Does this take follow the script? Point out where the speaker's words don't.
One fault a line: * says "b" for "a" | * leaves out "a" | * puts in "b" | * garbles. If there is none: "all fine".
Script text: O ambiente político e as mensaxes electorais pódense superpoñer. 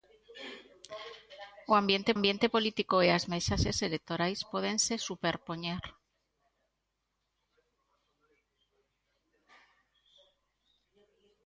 * puts in "ambiente"